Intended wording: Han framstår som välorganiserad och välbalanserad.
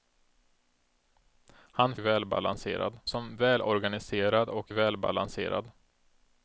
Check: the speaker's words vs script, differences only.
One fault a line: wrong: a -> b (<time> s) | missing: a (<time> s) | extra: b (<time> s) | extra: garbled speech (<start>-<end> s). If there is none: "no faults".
wrong: framstår -> välbalanserad (2.0 s)